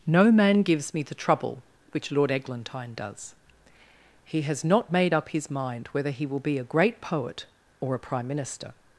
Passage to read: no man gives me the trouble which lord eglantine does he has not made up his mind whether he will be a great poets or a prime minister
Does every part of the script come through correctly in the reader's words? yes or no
no